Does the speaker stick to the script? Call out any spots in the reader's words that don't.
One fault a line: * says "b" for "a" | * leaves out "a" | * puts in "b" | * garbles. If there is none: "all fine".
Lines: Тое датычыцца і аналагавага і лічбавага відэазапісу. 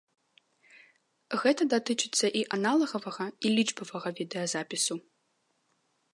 * says "Гэта" for "Тое"